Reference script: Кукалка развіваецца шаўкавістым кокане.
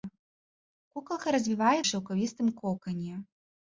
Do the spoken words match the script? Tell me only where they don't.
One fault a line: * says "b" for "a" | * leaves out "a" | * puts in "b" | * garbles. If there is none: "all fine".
all fine